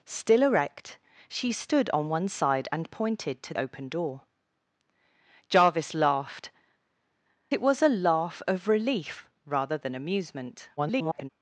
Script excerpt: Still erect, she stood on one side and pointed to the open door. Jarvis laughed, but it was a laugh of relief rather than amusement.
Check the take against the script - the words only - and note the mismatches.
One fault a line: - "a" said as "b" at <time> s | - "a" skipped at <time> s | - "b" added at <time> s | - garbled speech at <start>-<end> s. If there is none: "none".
- "the" skipped at 3.5 s
- "but" skipped at 6.5 s
- garbled speech at 10.8-11.3 s